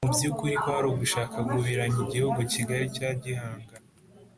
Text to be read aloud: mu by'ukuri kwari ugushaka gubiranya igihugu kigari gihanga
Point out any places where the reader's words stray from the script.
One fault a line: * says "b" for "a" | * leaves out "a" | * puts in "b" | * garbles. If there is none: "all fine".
* puts in "cya"